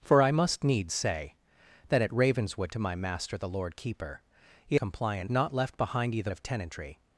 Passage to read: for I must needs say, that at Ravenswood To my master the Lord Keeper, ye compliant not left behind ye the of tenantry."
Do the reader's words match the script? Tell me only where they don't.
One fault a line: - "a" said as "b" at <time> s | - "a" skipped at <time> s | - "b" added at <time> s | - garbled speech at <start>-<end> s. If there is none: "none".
none